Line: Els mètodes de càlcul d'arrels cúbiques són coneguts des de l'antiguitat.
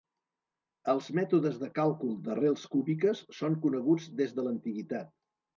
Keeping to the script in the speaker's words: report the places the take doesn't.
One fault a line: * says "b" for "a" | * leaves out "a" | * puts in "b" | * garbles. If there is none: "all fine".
all fine